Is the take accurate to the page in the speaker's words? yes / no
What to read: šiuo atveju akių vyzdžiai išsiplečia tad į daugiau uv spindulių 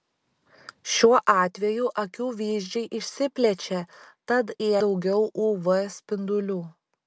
yes